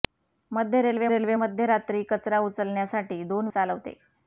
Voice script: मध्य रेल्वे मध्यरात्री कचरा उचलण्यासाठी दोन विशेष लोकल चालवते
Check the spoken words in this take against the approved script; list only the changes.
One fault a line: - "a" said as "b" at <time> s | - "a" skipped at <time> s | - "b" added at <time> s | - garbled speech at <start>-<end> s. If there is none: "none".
- "रेल्वे" added at 1.1 s
- "विशेष लोकल" skipped at 3.5 s